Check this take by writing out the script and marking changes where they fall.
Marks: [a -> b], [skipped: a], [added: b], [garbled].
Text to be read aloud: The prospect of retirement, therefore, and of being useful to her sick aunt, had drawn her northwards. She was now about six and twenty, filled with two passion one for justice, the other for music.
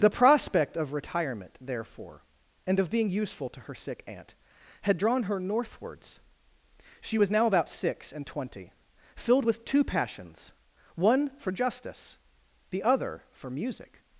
The prospect of retirement, therefore, and of being useful to her sick aunt, had drawn her northwards. She was now about six and twenty, filled with two [passion -> passions] one for justice, the other for music.